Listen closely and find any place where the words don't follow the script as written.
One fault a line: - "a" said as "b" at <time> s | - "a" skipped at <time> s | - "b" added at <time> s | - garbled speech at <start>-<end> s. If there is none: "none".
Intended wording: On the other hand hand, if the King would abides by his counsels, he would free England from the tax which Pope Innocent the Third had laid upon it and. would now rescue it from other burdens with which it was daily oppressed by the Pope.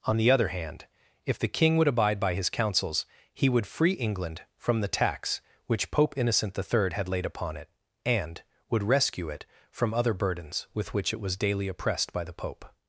- "hand" skipped at 0.8 s
- "abides" said as "abide" at 1.9 s
- "now" skipped at 8.8 s